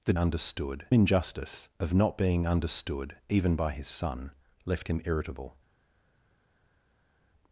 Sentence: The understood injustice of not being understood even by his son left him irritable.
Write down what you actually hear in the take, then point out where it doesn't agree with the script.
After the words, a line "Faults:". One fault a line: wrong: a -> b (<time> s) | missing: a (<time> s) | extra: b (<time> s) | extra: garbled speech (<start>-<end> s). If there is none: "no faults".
The understood injustice of not being understood even by his son left him irritable.
Faults:
no faults